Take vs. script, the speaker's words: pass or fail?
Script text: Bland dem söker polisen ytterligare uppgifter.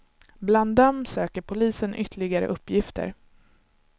pass